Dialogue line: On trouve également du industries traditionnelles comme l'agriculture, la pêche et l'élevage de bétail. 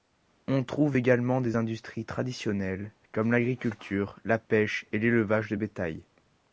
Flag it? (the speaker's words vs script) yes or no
yes